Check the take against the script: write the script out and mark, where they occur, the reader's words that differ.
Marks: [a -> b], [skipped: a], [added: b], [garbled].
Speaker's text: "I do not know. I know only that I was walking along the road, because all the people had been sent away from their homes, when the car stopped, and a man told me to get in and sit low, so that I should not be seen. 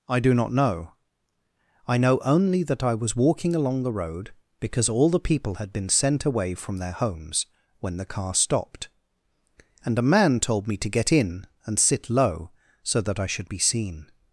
"I do not know. I know only that I was walking along the road, because all the people had been sent away from their homes, when the car stopped, and a man told me to get in and sit low, so that I should [skipped: not] be seen.